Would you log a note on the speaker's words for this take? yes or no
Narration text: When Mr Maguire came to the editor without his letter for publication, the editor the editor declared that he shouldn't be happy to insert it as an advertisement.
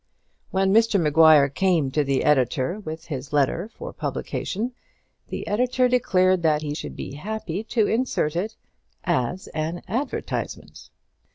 yes